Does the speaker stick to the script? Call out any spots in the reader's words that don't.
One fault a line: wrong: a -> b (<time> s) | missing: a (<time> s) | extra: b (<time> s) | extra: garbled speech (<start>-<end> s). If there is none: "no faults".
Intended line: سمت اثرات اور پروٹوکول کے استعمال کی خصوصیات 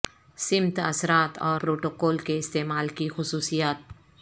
no faults